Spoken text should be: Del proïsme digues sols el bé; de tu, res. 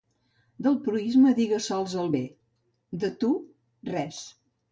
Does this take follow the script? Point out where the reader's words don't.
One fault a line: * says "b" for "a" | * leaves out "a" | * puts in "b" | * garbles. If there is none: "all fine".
all fine